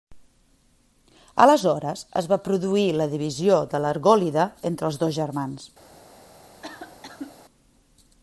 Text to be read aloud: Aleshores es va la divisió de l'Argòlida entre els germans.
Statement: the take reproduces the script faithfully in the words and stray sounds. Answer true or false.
false